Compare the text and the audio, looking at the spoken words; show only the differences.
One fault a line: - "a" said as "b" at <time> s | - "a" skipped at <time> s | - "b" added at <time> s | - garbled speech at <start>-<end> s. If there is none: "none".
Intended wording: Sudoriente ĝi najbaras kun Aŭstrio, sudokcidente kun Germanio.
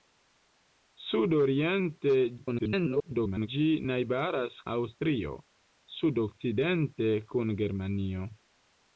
- garbled speech at 2.4-3.5 s
- "kun" skipped at 4.6 s